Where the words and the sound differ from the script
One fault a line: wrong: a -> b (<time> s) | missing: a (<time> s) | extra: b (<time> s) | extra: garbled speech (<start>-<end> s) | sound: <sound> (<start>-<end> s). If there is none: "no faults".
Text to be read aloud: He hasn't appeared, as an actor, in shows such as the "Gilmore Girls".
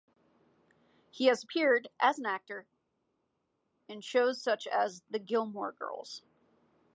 wrong: hasn't -> has (1.3 s)